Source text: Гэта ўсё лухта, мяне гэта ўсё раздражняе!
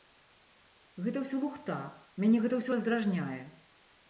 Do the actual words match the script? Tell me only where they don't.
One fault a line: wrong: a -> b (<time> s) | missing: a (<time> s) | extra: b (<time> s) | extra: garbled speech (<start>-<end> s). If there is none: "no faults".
no faults